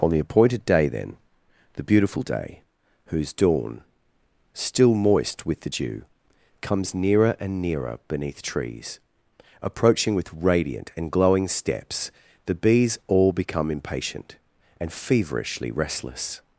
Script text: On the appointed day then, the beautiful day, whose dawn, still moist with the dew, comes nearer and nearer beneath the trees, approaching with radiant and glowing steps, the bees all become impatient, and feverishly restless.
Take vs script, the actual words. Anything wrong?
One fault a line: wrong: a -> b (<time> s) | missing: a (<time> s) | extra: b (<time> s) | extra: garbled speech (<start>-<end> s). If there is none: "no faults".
missing: the (8.4 s)